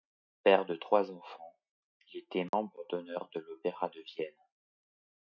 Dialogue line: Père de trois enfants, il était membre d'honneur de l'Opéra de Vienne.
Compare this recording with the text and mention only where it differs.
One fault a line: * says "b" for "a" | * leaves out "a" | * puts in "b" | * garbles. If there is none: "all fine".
all fine